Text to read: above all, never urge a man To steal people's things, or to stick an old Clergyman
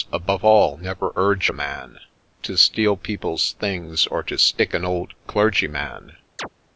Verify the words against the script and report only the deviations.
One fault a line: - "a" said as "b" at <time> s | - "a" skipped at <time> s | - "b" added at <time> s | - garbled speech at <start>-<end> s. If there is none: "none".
none